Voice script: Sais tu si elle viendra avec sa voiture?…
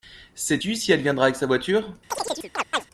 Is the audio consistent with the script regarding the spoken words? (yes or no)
yes